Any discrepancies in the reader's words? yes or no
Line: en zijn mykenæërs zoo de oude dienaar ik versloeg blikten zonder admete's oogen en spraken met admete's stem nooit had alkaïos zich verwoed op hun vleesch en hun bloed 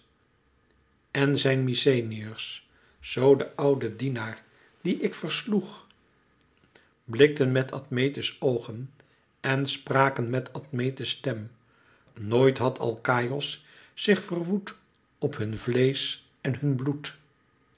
yes